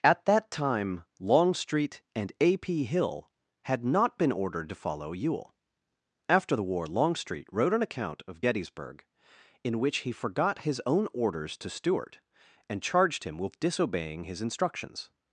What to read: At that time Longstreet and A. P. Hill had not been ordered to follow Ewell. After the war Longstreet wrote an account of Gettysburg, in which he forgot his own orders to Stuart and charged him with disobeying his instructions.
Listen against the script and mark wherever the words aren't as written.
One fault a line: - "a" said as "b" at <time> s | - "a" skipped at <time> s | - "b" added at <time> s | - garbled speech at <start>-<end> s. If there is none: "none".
none